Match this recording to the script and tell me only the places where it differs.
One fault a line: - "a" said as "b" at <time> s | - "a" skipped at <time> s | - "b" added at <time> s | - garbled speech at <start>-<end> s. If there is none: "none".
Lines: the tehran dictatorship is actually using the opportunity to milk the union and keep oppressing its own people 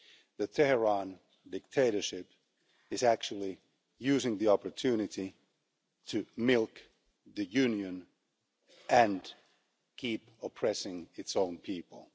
none